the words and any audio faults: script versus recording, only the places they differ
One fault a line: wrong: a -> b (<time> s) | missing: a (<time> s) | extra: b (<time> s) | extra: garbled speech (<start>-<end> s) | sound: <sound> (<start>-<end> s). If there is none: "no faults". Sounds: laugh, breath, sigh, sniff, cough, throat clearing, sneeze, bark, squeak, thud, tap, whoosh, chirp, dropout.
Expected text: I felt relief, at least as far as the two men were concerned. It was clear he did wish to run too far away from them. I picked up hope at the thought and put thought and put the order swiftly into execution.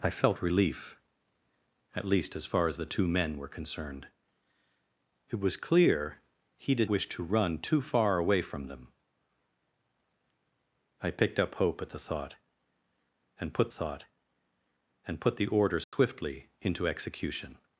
sound: dropout (15.8-15.9 s)